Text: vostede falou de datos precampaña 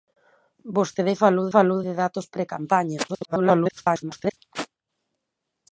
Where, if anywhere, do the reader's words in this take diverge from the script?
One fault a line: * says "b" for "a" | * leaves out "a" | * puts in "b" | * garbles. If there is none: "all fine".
* puts in "falou"
* garbles